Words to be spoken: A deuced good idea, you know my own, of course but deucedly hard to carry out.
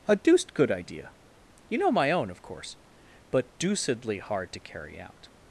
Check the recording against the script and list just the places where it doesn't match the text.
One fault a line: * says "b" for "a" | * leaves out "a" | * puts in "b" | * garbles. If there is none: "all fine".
all fine